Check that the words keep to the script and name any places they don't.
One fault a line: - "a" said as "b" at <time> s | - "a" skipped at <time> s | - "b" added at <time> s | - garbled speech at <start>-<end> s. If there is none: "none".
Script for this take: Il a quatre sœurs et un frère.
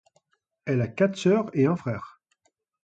- "Il" said as "Elle" at 0.7 s